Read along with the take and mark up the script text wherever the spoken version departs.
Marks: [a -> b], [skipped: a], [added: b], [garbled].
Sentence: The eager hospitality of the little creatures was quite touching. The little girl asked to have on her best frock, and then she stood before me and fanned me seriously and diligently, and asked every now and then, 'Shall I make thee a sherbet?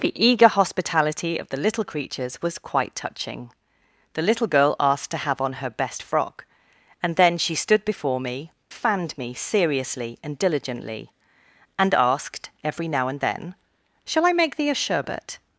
The eager hospitality of the little creatures was quite touching. The little girl asked to have on her best frock, and then she stood before me [skipped: and] fanned me seriously and diligently, and asked every now and then, 'Shall I make thee a sherbet?